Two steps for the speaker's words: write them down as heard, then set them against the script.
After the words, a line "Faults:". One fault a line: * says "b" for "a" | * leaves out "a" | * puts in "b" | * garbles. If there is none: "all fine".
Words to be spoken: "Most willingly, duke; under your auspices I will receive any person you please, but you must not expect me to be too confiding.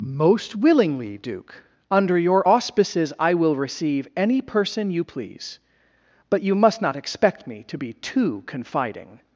"Most willingly, duke; under your auspices I will receive any person you please, but you must not expect me to be too confiding.
Faults:
all fine